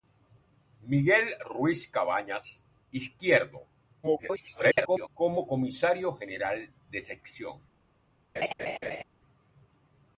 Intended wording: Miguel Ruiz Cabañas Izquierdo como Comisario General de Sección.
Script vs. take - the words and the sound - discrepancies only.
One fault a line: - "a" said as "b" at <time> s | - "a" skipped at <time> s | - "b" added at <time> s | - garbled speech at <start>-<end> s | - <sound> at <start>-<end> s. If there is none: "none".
- garbled speech at 4.0-5.1 s
- laugh at 8.4-9.0 s